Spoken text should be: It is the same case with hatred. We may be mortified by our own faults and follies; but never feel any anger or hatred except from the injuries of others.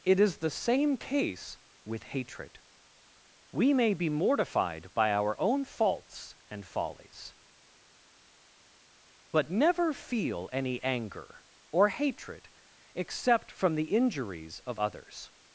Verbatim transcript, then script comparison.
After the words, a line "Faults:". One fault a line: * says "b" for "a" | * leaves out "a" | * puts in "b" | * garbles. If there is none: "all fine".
It is the same case with hatred. We may be mortified by our own faults and follies; but never feel any anger or hatred except from the injuries of others.
Faults:
all fine